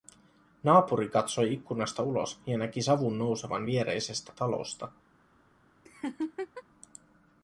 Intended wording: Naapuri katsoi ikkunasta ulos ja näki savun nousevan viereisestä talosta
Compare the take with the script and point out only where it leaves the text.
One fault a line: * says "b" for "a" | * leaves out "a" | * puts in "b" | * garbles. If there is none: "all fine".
all fine